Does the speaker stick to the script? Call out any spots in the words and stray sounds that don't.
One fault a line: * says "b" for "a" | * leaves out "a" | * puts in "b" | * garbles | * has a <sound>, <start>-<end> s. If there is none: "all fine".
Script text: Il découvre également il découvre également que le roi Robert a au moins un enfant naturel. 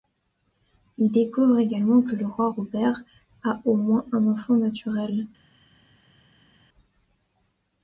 * leaves out "il découvre également"